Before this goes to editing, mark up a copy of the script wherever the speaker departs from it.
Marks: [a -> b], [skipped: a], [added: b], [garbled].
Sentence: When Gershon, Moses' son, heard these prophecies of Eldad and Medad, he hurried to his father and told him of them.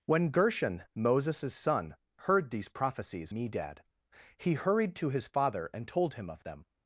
When Gershon, Moses' son, heard these prophecies [skipped: of Eldad and] Medad, he hurried to his father and told him of them.